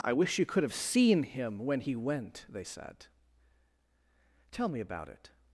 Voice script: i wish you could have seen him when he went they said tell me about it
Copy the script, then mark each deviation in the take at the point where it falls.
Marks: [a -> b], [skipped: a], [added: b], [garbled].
i wish you could have seen him when he went they said tell me about it